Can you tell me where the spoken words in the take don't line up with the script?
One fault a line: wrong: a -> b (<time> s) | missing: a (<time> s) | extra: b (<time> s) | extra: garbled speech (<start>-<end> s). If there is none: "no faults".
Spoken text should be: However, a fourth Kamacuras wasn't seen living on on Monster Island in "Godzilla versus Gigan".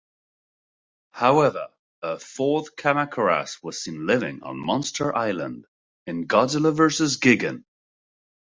wrong: wasn't -> was (3.6 s)
missing: on (4.6 s)